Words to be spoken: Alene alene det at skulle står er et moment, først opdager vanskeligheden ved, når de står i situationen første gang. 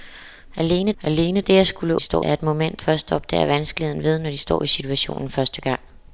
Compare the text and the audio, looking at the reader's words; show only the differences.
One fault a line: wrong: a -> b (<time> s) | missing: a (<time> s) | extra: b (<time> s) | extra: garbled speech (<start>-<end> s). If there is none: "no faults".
no faults